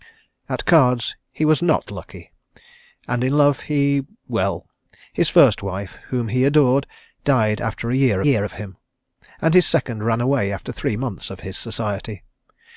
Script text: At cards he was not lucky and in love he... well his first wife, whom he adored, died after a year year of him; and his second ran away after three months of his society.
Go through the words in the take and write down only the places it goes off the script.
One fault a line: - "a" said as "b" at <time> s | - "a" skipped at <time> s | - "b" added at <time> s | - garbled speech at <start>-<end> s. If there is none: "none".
none